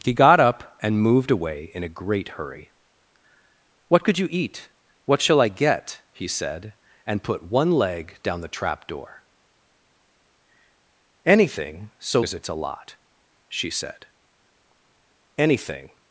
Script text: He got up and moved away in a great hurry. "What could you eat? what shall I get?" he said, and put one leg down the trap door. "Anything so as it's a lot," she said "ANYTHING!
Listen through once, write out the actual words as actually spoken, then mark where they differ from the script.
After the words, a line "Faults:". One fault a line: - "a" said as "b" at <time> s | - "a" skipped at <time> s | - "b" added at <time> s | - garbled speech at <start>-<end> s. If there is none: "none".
He got up and moved away in a great hurry. "What could you eat? what shall I get?" he said, and put one leg down the trap door. "Anything so as it's a lot," she said "ANYTHING!
Faults:
none